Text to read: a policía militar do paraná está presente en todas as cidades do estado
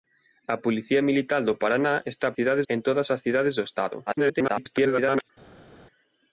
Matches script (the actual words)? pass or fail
fail